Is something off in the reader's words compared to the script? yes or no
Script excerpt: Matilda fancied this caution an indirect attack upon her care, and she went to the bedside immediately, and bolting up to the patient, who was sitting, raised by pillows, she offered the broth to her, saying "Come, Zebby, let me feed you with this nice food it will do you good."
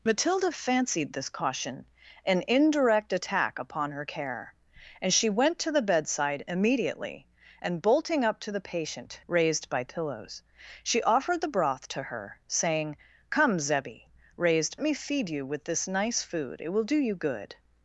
yes